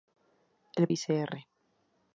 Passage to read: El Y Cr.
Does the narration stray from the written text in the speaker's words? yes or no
no